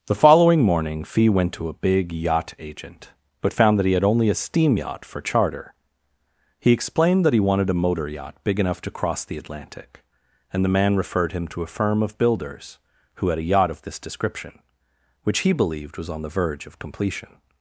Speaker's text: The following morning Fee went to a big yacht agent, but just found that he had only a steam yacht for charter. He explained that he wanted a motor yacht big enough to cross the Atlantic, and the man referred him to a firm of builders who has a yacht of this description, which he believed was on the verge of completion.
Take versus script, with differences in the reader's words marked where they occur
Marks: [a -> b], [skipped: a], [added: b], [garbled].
The following morning Fee went to a big yacht agent, but [skipped: just] found that he had only a steam yacht for charter. He explained that he wanted a motor yacht big enough to cross the Atlantic, and the man referred him to a firm of builders who [has -> had] a yacht of this description, which he believed was on the verge of completion.